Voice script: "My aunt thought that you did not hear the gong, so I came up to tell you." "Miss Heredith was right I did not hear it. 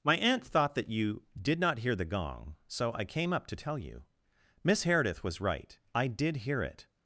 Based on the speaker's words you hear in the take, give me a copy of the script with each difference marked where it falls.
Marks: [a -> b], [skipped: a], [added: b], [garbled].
"My aunt thought that you did not hear the gong, so I came up to tell you." "Miss Heredith was right I did [skipped: not] hear it.